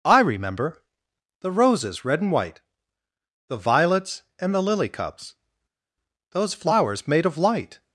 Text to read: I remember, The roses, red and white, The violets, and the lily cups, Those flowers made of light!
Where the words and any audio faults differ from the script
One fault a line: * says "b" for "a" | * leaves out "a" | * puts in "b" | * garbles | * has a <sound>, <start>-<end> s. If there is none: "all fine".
all fine